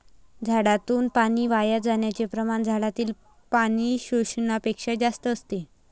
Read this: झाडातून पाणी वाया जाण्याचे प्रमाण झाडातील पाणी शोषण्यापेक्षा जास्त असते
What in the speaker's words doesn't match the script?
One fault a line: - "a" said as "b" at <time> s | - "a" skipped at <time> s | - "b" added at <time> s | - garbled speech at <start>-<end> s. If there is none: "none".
none